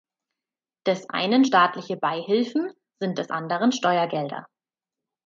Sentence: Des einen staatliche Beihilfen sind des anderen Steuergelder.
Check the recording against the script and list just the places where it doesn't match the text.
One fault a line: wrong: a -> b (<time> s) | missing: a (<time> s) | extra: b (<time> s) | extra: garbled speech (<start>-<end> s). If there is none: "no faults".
no faults